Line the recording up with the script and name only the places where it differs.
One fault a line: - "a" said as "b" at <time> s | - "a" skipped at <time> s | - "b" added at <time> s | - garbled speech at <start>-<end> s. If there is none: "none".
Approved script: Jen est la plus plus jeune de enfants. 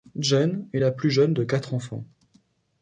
- "plus" skipped at 1.1 s
- "quatre" added at 1.4 s